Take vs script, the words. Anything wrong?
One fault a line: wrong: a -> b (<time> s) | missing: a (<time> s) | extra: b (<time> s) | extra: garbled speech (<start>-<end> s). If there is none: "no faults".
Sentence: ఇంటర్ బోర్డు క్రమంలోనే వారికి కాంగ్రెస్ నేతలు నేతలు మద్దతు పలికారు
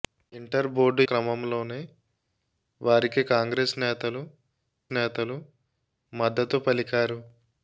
no faults